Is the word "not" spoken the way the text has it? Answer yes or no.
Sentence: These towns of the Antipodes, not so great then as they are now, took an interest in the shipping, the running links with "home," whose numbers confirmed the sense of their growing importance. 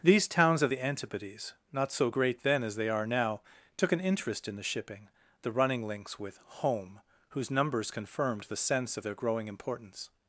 yes